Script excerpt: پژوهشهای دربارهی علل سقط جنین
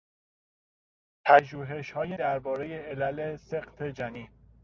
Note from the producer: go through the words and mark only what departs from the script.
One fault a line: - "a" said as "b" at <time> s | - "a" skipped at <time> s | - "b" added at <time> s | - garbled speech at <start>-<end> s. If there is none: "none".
none